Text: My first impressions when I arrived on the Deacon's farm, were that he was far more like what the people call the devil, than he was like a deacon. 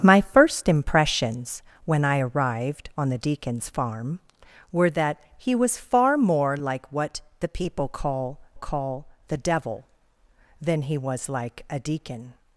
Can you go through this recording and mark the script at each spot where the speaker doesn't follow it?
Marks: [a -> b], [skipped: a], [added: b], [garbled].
My first impressions when I arrived on the Deacon's farm, were that he was far more like what the people call [added: call] the devil, than he was like a deacon.